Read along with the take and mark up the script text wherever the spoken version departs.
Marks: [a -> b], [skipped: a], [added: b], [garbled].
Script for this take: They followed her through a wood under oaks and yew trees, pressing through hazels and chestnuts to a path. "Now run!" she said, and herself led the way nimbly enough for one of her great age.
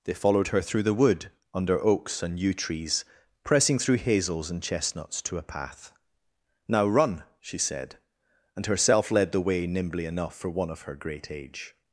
They followed her through [a -> the] wood under oaks and yew trees, pressing through hazels and chestnuts to a path. "Now run!" she said, and herself led the way nimbly enough for one of her great age.